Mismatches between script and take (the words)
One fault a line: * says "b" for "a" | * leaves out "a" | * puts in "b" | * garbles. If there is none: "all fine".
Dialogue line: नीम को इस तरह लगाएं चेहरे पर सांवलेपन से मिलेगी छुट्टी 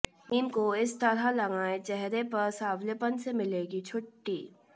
all fine